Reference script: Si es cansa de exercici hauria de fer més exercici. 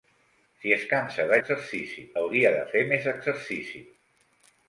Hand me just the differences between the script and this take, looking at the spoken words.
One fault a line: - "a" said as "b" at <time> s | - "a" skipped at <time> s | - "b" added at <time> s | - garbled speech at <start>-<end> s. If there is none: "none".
none